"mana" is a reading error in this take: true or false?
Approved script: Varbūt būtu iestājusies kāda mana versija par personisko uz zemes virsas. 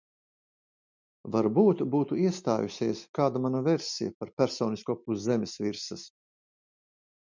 false